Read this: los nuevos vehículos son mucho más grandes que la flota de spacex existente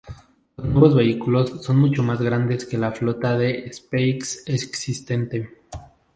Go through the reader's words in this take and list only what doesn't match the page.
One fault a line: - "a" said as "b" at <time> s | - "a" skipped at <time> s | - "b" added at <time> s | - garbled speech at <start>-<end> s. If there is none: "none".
none